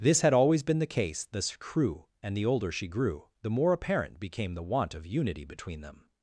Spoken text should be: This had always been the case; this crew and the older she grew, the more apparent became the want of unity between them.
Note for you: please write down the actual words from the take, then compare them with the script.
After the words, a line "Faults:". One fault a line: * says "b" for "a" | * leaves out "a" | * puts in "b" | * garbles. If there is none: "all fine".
This had always been the case; this crew and the older she grew, the more apparent became the want of unity between them.
Faults:
all fine